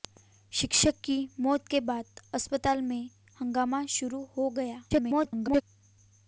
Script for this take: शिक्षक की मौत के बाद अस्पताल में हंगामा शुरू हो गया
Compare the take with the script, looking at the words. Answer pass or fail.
fail